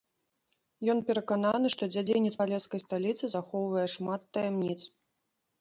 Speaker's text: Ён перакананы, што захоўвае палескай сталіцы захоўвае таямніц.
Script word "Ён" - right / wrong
right